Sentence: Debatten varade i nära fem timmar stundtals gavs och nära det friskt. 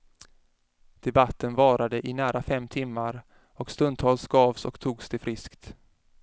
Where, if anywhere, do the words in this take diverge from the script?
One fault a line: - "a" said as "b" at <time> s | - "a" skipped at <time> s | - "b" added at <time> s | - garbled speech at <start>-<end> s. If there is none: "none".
- "och" added at 3.5 s
- "nära" said as "togs" at 4.8 s